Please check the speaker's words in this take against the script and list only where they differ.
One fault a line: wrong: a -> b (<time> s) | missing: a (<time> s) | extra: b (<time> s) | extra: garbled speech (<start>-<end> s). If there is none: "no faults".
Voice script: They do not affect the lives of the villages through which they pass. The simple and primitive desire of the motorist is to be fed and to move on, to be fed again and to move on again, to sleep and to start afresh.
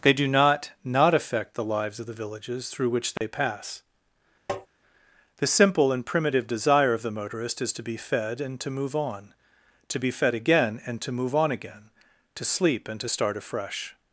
extra: not (0.8 s)